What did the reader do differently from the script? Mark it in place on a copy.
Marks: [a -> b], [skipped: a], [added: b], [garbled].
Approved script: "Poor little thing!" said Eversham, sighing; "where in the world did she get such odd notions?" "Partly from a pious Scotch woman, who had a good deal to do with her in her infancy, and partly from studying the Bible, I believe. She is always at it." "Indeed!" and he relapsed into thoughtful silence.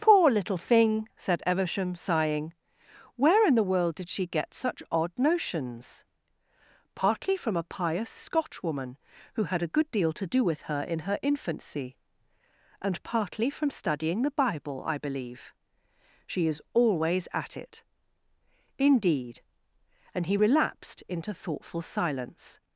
"Poor little thing!" said Eversham, sighing; "where in the world did she get such odd notions?" "Partly from a pious Scotch woman, who had a good deal to do with her in her infancy, and partly from studying the Bible, I believe. She is always at it." "Indeed!" and he relapsed into thoughtful silence.